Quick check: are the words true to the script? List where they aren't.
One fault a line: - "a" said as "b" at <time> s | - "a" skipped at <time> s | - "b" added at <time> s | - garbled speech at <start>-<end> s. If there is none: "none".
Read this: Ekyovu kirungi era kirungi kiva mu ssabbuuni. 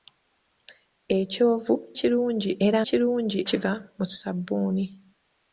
none